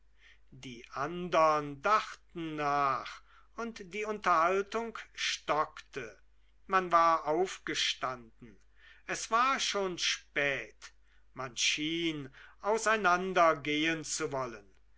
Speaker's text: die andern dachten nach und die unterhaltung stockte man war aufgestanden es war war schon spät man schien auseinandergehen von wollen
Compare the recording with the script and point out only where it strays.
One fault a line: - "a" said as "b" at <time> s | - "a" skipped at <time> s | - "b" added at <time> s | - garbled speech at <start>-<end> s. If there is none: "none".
- "war" skipped at 9.6 s
- "von" said as "zu" at 14.0 s